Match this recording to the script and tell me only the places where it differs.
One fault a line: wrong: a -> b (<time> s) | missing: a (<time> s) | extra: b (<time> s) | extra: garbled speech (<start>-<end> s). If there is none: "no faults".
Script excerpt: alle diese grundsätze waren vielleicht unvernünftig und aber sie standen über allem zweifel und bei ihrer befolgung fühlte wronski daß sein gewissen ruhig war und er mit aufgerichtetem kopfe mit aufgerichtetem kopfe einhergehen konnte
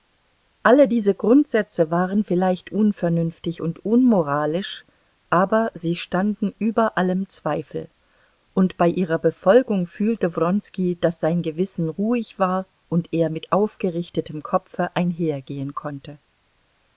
extra: unmoralisch (3.9 s)
missing: mit aufgerichtetem kopfe (15.0 s)